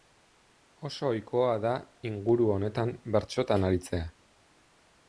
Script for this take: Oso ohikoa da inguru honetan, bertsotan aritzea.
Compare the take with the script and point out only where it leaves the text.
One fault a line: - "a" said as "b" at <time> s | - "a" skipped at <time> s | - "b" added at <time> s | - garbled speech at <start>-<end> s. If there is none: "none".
none